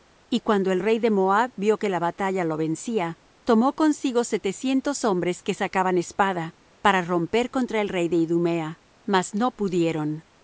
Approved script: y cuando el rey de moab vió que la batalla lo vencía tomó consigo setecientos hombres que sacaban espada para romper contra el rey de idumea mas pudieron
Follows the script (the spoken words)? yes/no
no